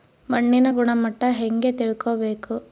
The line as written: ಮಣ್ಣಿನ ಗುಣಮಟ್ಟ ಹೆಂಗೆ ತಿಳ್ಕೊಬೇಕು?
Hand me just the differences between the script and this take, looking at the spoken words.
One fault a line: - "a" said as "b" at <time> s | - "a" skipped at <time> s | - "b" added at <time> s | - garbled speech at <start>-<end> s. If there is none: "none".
none